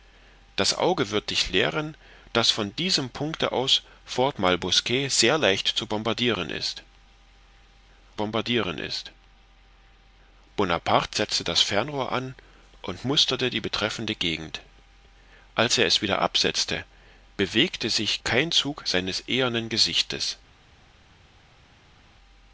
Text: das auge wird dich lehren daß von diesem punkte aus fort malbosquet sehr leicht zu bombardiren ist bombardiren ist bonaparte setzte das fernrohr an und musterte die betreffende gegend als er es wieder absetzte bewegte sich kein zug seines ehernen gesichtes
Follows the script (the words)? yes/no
yes